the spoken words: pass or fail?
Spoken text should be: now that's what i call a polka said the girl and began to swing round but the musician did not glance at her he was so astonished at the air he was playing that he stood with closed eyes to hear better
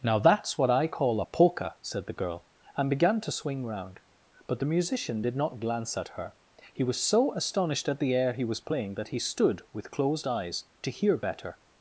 pass